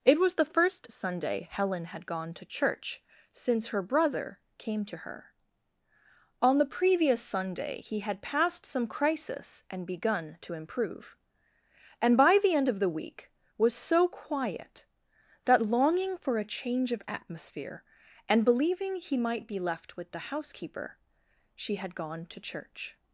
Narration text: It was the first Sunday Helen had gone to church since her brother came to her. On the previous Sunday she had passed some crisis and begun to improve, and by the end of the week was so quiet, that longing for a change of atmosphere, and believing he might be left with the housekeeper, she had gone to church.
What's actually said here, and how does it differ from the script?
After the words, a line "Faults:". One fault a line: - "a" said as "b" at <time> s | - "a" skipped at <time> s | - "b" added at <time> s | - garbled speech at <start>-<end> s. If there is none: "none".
It was the first Sunday Helen had gone to church since her brother came to her. On the previous Sunday he had passed some crisis and begun to improve, and by the end of the week was so quiet, that longing for a change of atmosphere, and believing he might be left with the housekeeper, she had gone to church.
Faults:
- "she" said as "he" at 7.8 s